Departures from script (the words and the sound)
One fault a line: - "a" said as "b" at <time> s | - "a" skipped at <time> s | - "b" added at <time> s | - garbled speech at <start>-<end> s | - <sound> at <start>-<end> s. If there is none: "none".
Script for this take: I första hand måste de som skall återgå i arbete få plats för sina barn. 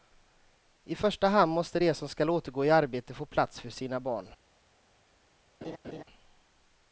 - laugh at 5.6-6.0 s